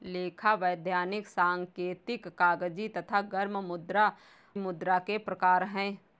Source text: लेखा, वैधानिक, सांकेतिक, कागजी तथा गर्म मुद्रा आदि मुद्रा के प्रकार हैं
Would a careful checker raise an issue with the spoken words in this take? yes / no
yes